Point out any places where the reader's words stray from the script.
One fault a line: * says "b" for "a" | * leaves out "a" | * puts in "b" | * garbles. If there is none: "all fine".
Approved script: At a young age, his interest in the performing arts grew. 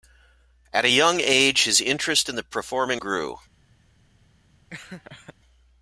* leaves out "arts"